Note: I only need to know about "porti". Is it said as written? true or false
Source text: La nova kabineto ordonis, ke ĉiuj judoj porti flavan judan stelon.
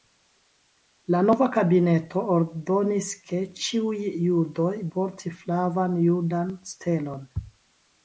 true